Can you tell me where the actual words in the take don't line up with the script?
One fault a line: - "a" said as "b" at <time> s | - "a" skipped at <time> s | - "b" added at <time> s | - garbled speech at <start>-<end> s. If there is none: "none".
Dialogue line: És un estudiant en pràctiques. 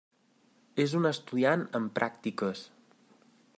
none